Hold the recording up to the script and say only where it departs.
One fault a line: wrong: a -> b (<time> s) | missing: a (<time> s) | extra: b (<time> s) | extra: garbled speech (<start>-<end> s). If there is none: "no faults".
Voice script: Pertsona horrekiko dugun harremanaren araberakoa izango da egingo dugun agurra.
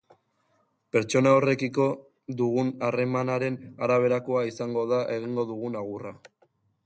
no faults